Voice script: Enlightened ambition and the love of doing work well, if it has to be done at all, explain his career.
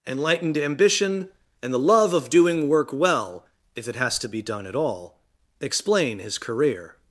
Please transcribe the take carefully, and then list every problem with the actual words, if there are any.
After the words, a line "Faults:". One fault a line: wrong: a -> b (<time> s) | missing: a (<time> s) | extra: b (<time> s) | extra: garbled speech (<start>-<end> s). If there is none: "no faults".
Enlightened ambition and the love of doing work well, if it has to be done at all, explain his career.
Faults:
no faults